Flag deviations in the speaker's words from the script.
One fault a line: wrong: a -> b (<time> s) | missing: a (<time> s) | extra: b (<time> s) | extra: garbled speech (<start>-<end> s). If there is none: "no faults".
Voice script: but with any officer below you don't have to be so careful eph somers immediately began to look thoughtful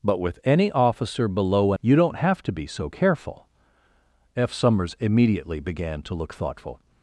no faults